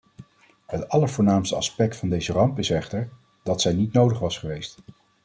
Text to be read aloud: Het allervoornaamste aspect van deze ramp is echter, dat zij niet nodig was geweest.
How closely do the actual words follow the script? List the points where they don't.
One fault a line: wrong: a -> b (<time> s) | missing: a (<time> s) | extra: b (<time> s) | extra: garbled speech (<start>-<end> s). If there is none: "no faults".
no faults